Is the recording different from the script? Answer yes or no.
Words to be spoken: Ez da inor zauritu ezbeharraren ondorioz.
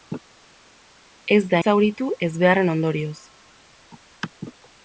yes